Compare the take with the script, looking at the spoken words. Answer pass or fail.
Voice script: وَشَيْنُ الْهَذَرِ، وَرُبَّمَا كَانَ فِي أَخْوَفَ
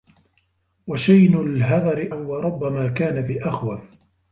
pass